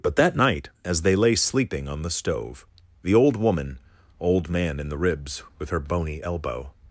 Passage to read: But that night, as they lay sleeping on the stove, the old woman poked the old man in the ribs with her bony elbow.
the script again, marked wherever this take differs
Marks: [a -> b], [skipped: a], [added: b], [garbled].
But that night, as they lay sleeping on the stove, the old woman [skipped: poked the] old man in the ribs with her bony elbow.